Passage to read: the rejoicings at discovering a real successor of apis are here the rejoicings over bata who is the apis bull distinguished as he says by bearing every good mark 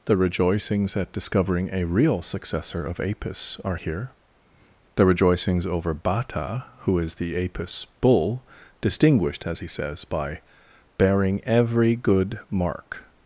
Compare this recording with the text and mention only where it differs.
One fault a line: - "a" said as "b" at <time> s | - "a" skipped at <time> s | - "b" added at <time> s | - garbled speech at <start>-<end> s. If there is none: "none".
none